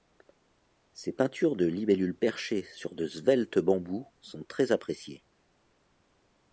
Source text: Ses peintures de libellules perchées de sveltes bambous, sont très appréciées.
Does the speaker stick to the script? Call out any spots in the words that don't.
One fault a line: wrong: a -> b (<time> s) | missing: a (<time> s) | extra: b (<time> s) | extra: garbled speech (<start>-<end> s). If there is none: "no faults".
extra: sur (2.6 s)